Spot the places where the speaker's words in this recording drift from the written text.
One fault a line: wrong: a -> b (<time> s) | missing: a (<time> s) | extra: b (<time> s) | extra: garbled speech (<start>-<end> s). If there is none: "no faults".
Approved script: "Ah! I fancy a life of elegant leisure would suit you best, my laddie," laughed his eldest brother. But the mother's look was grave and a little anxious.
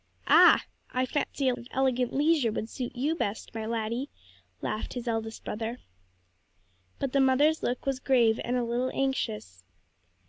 missing: life (1.5 s)